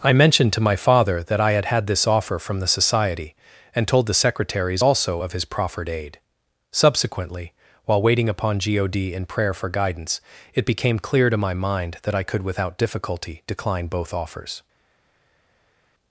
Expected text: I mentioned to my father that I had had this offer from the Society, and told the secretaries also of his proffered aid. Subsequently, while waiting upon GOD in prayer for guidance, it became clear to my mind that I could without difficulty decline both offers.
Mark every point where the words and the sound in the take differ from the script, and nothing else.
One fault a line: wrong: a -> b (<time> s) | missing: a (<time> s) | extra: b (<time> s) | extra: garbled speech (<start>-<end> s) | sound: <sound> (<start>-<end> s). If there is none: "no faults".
no faults